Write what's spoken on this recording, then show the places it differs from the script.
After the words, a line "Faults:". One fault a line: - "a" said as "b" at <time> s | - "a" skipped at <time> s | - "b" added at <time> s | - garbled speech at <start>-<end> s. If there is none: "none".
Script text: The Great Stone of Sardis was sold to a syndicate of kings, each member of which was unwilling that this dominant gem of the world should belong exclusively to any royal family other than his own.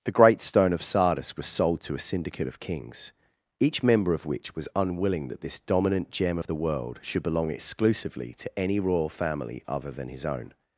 The Great Stone of Sardis was sold to a syndicate of kings, each member of which was unwilling that this dominant gem of the world should belong exclusively to any royal family other than his own.
Faults:
none